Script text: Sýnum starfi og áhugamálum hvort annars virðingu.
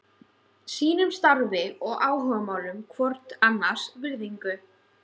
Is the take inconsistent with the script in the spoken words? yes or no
no